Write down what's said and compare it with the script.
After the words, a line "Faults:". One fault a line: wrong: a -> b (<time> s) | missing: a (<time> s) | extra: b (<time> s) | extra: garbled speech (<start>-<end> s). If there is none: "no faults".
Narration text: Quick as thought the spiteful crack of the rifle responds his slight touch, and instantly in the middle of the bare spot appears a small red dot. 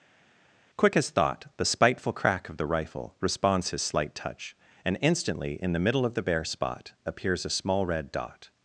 Quick as thought the spiteful crack of the rifle responds his slight touch, and instantly in the middle of the bare spot appears a small red dot.
Faults:
no faults